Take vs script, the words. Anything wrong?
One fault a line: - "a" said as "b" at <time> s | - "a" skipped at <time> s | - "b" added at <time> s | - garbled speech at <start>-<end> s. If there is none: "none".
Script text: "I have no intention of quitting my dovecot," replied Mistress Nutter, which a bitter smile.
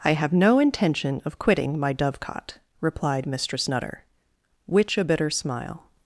none